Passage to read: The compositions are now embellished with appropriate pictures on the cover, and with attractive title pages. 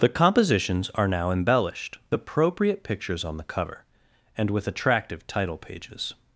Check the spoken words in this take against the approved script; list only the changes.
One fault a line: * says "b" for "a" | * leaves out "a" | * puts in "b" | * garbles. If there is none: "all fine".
* leaves out "with"